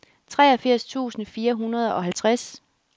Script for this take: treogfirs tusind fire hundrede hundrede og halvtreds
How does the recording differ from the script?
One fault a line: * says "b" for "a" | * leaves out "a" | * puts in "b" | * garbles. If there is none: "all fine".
* leaves out "hundrede"